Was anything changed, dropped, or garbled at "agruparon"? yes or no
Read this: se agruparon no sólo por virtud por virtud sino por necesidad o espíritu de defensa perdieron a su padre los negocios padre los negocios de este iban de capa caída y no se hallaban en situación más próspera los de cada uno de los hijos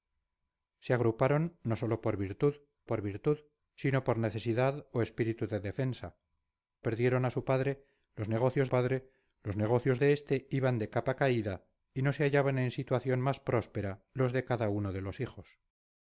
no